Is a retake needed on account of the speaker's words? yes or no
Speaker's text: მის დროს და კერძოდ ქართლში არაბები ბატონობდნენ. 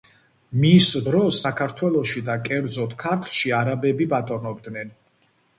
yes